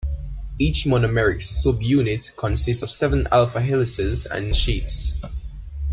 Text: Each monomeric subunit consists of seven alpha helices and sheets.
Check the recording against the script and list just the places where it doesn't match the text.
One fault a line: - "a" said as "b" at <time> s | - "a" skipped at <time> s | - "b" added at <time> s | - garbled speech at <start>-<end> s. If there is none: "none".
none